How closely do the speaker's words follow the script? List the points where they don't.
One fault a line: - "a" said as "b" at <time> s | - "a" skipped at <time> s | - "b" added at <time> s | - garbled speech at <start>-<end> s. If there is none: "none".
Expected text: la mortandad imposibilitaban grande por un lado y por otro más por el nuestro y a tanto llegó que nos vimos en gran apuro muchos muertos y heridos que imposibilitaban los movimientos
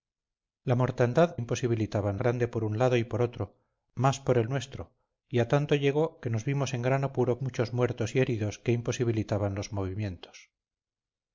none